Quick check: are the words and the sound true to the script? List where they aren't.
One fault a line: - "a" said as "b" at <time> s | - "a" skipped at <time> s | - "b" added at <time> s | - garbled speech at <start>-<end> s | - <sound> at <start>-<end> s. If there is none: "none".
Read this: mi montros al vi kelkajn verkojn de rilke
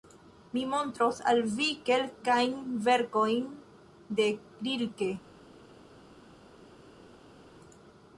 none